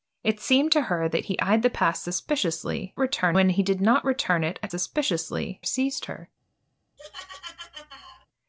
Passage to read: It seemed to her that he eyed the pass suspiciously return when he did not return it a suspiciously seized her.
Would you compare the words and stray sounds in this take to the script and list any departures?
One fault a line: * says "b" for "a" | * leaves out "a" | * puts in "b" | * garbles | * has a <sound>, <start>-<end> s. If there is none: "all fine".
* has a laugh, 7.0-8.3 s